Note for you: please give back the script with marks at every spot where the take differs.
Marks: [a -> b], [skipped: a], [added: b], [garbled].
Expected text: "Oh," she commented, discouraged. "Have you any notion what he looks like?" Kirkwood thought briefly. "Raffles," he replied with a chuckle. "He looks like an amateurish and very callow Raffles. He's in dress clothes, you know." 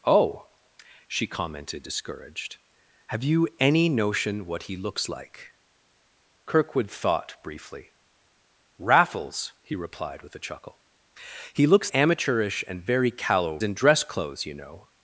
"Oh," she commented, discouraged. "Have you any notion what he looks like?" Kirkwood thought briefly. "Raffles," he replied with a chuckle. "He looks [skipped: like an] amateurish and very callow [skipped: Raffles. He's] in dress clothes, you know."